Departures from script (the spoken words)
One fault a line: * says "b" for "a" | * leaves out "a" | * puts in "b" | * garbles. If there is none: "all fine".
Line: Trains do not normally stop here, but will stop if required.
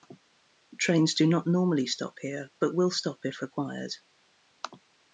all fine